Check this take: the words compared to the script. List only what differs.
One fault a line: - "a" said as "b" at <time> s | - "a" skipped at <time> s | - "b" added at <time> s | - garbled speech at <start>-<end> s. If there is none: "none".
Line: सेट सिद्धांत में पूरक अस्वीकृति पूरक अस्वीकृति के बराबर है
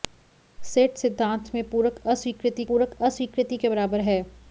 none